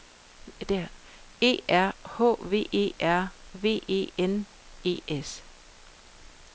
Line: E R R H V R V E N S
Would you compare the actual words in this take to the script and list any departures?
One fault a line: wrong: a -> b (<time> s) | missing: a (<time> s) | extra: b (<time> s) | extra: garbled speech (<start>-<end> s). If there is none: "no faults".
missing: R (1.9 s)
extra: E (2.7 s)
extra: E (4.8 s)